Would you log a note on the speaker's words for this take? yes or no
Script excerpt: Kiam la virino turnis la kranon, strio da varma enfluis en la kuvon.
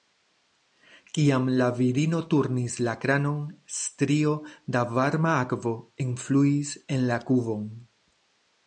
yes